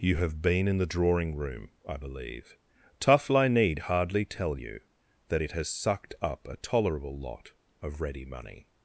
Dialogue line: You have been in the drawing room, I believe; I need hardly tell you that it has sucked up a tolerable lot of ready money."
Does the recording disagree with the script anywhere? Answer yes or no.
yes